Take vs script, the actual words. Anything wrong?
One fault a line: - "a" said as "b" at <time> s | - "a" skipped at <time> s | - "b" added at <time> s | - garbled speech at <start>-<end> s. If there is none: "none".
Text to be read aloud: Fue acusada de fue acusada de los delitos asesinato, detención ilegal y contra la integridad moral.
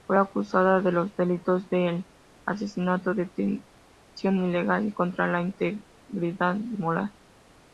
- "fue acusada" said as "los delitos" at 0.9 s
- "los delitos" skipped at 2.0 s